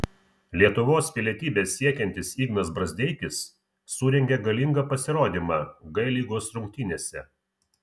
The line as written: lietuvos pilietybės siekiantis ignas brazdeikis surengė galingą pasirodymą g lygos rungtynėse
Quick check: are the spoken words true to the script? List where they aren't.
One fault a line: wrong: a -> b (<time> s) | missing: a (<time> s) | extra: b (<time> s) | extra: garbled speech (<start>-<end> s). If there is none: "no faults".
no faults